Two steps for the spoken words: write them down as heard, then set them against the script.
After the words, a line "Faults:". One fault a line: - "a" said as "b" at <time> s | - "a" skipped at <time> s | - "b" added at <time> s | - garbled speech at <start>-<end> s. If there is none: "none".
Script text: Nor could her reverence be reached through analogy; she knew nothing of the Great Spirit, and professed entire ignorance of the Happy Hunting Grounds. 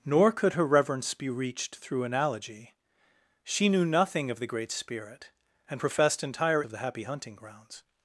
Nor could her reverence be reached through analogy; she knew nothing of the Great Spirit, and professed entire of the Happy Hunting Grounds.
Faults:
- "ignorance" skipped at 6.6 s